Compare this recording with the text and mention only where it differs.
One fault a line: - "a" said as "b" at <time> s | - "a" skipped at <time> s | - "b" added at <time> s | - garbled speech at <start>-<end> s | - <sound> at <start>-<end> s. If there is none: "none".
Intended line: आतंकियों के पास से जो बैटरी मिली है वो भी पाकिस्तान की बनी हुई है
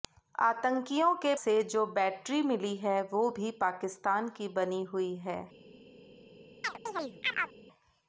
- "पास" skipped at 1.3 s
- chirp at 6.6-7.5 s